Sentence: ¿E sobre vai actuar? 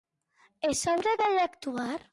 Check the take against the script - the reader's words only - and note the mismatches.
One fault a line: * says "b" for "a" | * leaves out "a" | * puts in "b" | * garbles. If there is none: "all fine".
all fine